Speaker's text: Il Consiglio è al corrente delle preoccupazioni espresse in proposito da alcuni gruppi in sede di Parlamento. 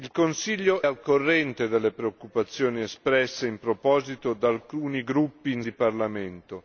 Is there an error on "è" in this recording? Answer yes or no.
yes